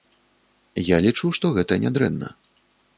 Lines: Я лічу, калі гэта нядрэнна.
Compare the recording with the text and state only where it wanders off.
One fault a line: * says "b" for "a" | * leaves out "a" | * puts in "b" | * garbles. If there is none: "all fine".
* says "што" for "калі"